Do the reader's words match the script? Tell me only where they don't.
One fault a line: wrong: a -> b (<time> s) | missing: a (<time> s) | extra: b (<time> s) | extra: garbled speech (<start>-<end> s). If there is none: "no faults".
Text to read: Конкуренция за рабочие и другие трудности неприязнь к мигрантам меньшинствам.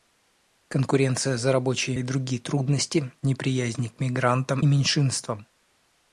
no faults